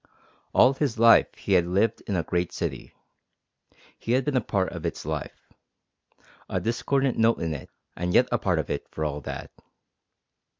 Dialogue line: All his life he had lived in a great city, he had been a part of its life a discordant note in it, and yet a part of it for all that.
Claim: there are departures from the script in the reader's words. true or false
false